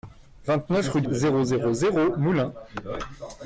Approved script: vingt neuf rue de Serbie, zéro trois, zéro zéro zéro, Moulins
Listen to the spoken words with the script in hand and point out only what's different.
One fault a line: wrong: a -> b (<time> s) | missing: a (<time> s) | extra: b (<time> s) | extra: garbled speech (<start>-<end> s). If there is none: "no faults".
missing: Serbie zéro trois (1.1 s)